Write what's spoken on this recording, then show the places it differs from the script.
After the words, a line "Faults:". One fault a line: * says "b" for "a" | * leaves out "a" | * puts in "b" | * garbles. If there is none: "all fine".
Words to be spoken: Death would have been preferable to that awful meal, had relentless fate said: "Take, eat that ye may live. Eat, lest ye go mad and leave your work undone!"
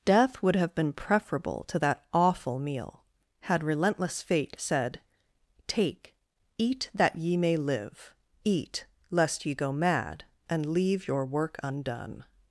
Death would have been preferable to that awful meal, had relentless fate said: "Take, eat that ye may live. Eat, lest ye go mad and leave your work undone!"
Faults:
all fine